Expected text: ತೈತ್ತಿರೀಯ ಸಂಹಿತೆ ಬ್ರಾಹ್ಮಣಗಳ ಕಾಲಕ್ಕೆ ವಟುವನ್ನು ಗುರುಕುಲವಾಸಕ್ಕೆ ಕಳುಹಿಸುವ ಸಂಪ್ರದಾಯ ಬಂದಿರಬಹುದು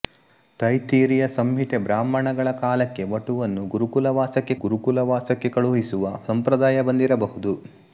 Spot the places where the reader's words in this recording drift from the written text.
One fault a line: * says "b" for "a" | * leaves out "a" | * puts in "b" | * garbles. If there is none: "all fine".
* puts in "ಗುರುಕುಲವಾಸಕ್ಕೆ"